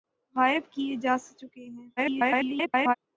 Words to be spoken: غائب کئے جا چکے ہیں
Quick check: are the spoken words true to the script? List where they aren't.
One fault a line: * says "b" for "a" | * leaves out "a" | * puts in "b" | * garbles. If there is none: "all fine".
* garbles